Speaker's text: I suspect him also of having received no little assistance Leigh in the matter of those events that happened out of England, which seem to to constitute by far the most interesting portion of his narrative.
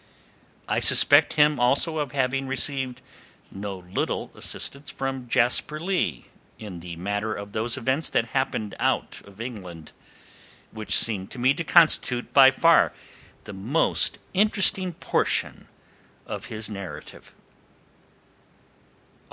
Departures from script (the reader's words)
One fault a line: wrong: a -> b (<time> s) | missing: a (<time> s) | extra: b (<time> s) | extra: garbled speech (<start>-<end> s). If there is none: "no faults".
extra: from Jasper (4.9 s)
extra: me (11.4 s)